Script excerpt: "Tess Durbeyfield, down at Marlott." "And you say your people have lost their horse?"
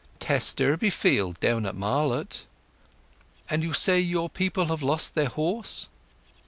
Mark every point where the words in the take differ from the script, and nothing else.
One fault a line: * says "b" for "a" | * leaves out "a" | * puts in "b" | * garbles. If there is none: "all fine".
all fine